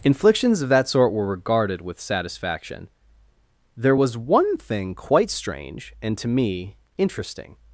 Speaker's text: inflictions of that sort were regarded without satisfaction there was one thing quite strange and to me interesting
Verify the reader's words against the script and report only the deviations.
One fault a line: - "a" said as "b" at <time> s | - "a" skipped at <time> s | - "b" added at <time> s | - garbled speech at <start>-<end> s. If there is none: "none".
- "without" said as "with" at 1.8 s